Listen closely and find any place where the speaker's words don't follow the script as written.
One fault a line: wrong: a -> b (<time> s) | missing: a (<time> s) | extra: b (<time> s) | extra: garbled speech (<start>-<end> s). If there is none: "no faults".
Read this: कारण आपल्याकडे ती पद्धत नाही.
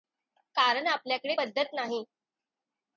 missing: ती (1.4 s)